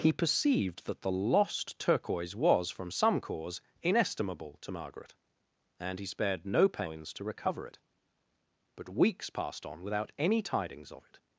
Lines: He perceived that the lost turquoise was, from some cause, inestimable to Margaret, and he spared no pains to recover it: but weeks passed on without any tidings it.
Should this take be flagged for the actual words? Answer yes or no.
yes